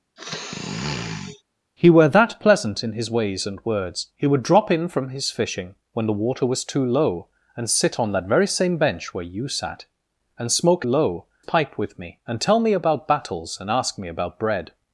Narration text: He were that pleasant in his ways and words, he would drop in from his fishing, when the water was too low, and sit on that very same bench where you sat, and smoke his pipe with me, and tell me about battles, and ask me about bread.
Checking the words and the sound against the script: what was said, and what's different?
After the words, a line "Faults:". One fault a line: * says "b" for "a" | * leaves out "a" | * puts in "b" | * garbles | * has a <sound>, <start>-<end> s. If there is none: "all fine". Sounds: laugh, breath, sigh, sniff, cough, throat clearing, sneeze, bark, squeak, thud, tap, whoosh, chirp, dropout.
He were that pleasant in his ways and words, he would drop in from his fishing, when the water was too low, and sit on that very same bench where you sat, and smoke low pipe with me, and tell me about battles, and ask me about bread.
Faults:
* has a sniff, 0.2-1.4 s
* says "low" for "his"